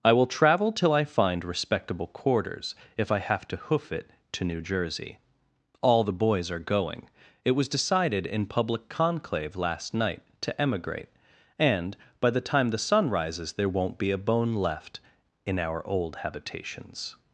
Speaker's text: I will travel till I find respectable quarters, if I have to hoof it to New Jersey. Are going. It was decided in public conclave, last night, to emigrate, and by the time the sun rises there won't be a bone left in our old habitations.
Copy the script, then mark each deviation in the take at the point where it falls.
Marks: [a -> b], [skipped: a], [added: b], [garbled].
I will travel till I find respectable quarters, if I have to hoof it to New Jersey. [added: All the boys] Are going. It was decided in public conclave, last night, to emigrate, and by the time the sun rises there won't be a bone left in our old habitations.